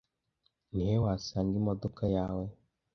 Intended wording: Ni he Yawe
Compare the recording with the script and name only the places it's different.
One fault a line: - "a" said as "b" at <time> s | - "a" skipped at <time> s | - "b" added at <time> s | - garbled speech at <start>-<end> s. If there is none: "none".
- "wasanga imodoka" added at 1.0 s